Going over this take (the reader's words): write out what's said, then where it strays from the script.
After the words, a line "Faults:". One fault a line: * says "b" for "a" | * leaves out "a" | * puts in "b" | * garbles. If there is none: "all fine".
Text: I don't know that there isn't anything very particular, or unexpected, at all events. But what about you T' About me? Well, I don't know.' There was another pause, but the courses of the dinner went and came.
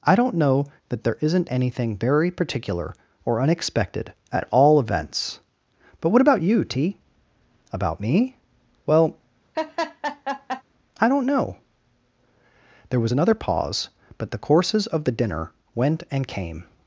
I don't know that there isn't anything very particular, or unexpected, at all events. But what about you T' About me? Well, I don't know.' There was another pause, but the courses of the dinner went and came.
Faults:
all fine